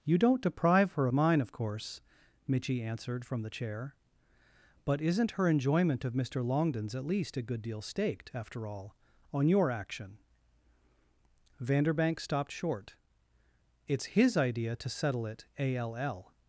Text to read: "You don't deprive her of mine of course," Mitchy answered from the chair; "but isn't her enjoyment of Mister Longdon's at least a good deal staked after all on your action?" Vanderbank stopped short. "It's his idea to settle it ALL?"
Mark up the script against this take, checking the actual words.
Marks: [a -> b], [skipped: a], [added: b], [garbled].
"You don't deprive her [skipped: of] mine of course," Mitchy answered from the chair; "but isn't her enjoyment of Mister Longdon's at least a good deal staked after all on your action?" Vanderbank stopped short. "It's his idea to settle it ALL?"